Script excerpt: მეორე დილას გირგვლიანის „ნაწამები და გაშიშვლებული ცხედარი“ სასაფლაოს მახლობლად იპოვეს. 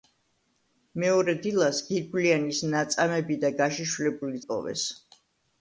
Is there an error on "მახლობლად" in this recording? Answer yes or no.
yes